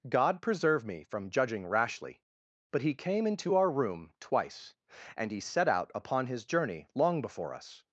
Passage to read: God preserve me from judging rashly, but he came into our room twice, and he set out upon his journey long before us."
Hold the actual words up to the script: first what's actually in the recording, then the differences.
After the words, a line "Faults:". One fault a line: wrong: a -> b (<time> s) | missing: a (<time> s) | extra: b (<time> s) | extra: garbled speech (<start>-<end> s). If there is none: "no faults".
God preserve me from judging rashly, but he came into our room twice, and he set out upon his journey long before us."
Faults:
no faults